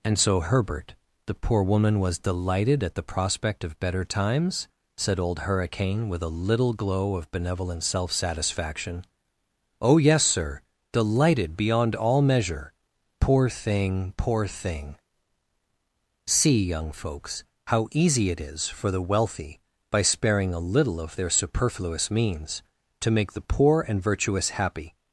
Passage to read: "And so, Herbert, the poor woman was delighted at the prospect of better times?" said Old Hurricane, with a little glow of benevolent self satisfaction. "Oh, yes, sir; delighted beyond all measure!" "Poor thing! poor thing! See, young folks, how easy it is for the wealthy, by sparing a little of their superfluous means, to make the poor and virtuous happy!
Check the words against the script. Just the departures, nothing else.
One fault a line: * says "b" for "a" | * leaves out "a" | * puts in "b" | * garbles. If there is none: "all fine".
all fine